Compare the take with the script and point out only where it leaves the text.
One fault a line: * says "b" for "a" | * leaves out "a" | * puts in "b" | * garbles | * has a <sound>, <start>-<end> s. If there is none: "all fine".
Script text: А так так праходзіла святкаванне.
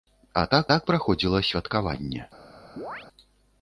* has a chirp, 2.8-3.1 s